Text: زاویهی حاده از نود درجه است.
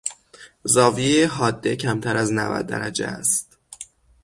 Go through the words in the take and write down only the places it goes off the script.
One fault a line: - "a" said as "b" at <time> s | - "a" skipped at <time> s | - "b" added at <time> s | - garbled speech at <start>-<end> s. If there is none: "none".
- "کمتر" added at 1.8 s